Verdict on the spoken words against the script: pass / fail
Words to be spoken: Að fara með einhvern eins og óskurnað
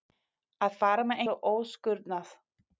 fail